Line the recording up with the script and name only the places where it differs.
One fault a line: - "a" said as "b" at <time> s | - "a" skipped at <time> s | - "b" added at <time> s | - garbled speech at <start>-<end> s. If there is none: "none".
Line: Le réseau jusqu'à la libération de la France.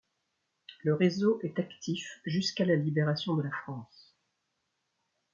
- "est actif" added at 1.4 s